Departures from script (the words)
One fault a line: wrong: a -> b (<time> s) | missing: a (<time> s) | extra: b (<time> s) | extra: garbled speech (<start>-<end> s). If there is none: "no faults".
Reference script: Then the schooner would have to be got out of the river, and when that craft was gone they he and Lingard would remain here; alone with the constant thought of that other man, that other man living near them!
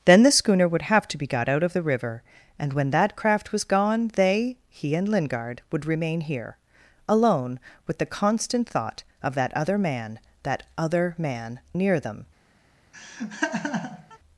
missing: living (11.6 s)